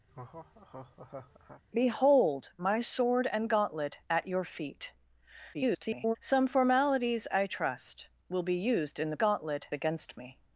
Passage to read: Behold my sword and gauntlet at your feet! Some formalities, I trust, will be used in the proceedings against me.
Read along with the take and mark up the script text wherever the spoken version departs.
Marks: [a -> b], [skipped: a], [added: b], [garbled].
Behold my sword and gauntlet at your feet! [garbled] Some formalities, I trust, will be used in the [proceedings -> gauntlet] against me.